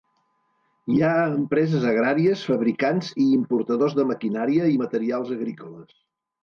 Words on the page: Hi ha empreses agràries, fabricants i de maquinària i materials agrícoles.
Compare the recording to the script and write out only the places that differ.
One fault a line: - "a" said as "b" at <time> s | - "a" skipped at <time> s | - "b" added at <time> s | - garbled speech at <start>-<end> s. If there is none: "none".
- "importadors" added at 3.4 s